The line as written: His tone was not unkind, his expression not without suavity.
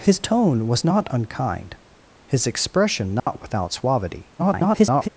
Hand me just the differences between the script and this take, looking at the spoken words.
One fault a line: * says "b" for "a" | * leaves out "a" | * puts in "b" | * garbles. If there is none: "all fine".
* garbles